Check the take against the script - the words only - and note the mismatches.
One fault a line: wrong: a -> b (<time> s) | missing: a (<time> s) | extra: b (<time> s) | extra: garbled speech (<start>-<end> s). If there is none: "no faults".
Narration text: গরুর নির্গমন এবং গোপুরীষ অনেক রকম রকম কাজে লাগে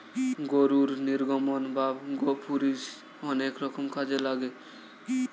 wrong: এবং -> বা (1.8 s)
missing: রকম (3.8 s)